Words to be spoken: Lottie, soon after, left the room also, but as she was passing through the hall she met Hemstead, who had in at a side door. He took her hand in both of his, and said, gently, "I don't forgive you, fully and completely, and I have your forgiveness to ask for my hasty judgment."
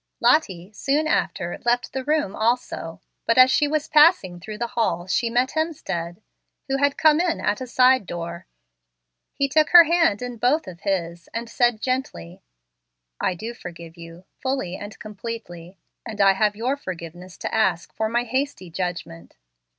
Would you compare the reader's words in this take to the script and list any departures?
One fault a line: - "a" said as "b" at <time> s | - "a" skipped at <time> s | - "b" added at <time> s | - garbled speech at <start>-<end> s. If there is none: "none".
- "come" added at 7.0 s
- "don't" said as "do" at 13.3 s